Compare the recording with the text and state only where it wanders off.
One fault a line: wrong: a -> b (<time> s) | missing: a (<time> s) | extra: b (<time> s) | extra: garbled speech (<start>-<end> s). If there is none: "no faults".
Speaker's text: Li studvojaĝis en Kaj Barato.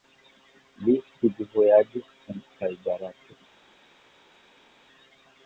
no faults